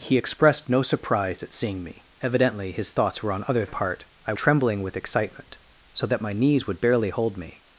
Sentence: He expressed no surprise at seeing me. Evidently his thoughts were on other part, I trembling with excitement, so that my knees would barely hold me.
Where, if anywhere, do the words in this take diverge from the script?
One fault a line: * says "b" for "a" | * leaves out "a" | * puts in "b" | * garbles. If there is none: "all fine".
all fine